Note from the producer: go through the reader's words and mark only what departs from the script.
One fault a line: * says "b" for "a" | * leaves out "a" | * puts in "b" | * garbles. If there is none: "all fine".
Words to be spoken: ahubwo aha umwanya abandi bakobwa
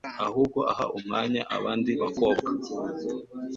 all fine